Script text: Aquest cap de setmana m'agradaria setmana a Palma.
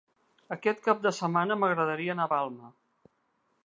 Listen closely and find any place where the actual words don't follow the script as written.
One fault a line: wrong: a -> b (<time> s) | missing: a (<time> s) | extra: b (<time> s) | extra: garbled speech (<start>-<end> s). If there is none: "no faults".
wrong: setmana -> anar (2.2 s)